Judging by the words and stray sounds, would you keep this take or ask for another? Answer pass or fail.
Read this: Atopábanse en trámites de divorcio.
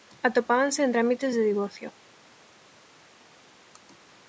pass